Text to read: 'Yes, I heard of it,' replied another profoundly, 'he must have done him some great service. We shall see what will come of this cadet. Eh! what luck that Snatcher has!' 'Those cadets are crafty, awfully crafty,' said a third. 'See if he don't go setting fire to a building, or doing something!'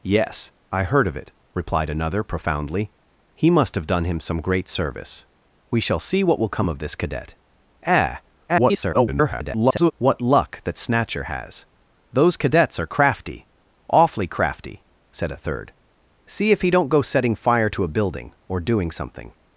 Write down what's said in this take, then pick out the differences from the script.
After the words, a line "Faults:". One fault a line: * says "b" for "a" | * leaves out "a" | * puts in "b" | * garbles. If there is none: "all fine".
'Yes, I heard of it,' replied another profoundly, 'he must have done him some great service. We shall see what will come of this cadet. Eh! [garbled] what luck that Snatcher has!' 'Those cadets are crafty, awfully crafty,' said a third. 'See if he don't go setting fire to a building, or doing something!'
Faults:
* garbles